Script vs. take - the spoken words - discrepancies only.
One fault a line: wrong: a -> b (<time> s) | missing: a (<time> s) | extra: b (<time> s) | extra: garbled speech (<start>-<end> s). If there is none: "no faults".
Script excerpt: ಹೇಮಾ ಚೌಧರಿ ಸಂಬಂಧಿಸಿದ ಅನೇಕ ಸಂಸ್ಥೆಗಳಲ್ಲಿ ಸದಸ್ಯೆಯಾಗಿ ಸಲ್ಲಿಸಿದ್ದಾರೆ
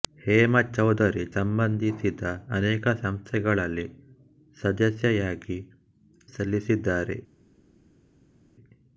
no faults